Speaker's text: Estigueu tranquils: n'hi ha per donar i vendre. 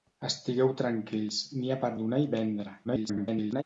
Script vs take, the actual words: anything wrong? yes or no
yes